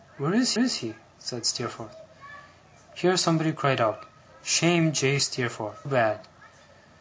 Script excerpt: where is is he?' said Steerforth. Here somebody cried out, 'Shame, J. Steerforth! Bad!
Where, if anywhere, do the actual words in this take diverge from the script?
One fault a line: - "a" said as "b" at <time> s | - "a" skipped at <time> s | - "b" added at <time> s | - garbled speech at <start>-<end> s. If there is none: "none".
none